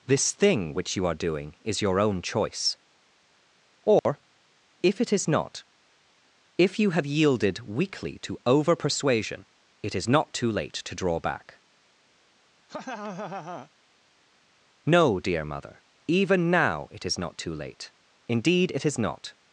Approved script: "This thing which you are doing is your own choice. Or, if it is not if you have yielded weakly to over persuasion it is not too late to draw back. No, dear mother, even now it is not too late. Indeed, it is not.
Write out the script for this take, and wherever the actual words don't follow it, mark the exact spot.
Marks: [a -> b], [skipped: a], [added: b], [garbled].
"This thing which you are doing is your own choice. Or, if it is not if you have yielded weakly to over persuasion it is not too late to draw back. No, dear mother, even now it is not too late. Indeed, it is not.